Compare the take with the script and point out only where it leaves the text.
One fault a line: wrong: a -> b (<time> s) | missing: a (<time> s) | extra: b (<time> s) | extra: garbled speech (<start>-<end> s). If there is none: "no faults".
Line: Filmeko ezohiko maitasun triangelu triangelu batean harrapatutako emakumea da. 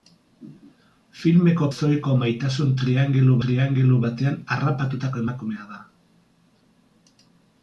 no faults